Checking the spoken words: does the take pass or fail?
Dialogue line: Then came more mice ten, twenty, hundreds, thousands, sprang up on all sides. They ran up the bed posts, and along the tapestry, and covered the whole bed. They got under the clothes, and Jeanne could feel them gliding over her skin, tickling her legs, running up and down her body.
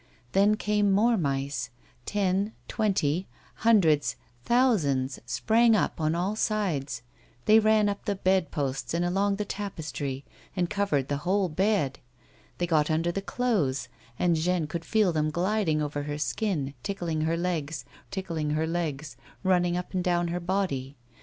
fail